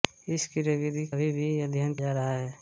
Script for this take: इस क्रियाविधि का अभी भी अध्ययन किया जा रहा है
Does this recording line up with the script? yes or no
no